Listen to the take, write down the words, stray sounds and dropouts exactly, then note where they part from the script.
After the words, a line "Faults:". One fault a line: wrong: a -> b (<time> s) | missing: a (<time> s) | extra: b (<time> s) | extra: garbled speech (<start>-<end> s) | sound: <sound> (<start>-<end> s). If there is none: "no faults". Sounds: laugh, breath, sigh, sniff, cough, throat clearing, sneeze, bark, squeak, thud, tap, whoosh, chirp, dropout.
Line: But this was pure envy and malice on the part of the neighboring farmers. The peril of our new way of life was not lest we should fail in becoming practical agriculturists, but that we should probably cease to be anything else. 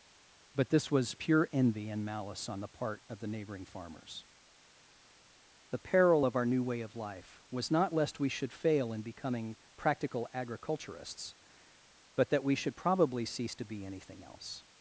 But this was pure envy and malice on the part of the neighboring farmers. The peril of our new way of life was not lest we should fail in becoming practical agriculturists, but that we should probably cease to be anything else.
Faults:
no faults